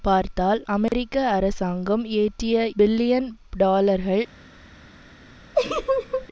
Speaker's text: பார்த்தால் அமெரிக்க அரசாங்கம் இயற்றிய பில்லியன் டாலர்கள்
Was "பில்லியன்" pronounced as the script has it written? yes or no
yes